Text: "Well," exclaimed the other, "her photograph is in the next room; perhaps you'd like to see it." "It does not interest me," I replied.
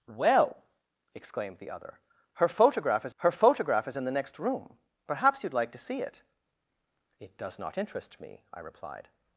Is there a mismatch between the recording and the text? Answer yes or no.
yes